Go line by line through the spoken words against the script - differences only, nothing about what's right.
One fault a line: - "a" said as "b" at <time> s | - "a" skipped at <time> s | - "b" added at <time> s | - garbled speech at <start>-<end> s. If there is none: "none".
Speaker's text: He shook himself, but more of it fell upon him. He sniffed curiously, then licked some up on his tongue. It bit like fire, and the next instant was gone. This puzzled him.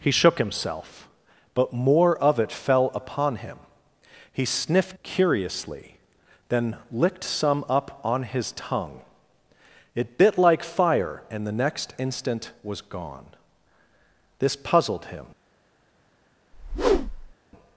none